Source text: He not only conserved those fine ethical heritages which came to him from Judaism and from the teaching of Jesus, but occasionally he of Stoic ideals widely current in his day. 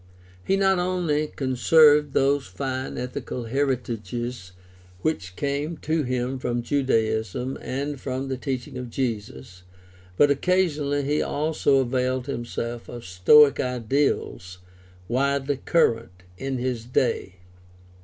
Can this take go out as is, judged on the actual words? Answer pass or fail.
fail